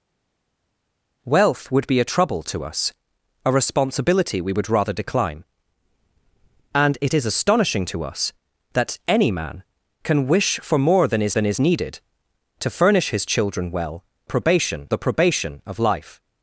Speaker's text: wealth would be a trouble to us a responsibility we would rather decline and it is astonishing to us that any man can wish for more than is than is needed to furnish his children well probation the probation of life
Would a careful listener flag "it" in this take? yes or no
no